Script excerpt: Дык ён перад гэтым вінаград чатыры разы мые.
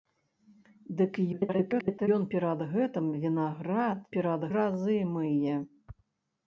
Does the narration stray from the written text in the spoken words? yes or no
yes